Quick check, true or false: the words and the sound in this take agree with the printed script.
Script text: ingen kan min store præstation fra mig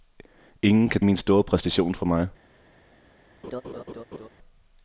false